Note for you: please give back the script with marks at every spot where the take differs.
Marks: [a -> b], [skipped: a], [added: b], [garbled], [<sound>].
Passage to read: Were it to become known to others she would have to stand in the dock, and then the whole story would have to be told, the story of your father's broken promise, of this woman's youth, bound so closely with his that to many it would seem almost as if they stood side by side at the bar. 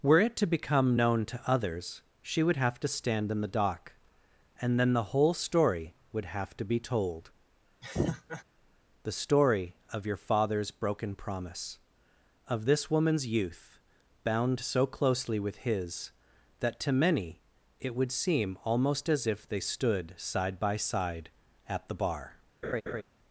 Were it to become known to others she would have to stand in the dock, and then the whole story would have to be told, [laugh] the story of your father's broken promise, of this woman's youth, bound so closely with his that to many it would seem almost as if they stood side by side at the bar. [laugh]